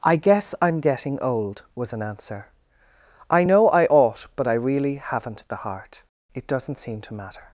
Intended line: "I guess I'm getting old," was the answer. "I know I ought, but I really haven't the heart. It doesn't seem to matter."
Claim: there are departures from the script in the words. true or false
true